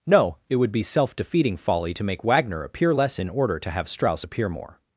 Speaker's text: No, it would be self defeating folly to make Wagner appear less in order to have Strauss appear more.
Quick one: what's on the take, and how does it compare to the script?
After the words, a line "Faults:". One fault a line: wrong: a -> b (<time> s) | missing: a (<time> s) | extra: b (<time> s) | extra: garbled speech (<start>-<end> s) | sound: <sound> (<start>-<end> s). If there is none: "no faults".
No, it would be self defeating folly to make Wagner appear less in order to have Strauss appear more.
Faults:
no faults